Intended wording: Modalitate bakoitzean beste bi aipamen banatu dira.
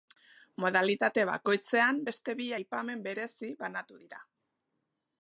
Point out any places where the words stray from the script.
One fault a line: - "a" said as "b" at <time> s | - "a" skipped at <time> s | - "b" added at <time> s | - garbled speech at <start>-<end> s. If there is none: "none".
- "berezi" added at 3.1 s